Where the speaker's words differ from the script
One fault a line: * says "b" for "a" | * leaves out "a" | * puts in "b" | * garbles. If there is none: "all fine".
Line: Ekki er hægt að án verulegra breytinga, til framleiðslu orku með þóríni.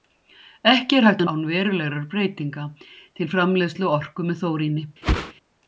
all fine